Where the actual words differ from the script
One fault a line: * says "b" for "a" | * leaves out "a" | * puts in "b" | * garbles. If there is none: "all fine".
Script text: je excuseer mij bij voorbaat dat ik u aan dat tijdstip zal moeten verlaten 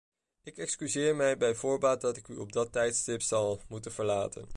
* says "ik" for "je"
* says "op" for "aan"